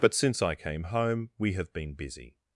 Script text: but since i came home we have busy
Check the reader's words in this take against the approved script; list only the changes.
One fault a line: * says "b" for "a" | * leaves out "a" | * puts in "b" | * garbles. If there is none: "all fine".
* puts in "been"